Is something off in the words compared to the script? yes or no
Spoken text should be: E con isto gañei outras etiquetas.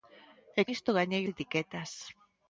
yes